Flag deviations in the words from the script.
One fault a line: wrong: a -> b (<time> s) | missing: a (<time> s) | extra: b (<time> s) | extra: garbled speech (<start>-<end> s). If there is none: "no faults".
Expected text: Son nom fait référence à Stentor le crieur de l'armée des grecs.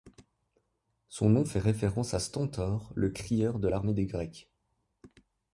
no faults